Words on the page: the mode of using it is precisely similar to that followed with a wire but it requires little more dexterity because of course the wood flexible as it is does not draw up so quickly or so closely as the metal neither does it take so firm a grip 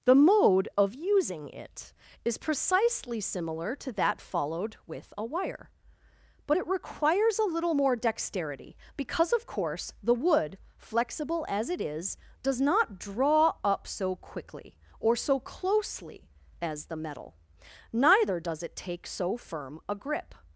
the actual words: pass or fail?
fail